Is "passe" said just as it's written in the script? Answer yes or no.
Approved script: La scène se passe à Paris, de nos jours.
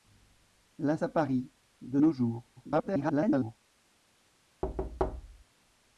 no